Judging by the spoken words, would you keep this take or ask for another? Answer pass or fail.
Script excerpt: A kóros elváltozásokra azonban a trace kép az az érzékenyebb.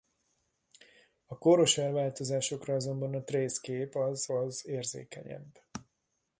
pass